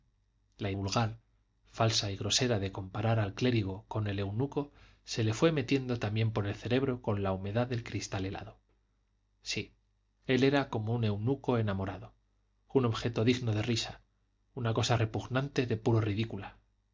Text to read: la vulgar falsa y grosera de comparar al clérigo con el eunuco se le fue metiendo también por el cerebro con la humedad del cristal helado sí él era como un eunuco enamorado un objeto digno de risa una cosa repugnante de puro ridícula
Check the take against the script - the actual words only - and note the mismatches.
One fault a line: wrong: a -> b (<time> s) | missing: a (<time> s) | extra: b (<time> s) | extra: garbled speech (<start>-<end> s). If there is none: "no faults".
no faults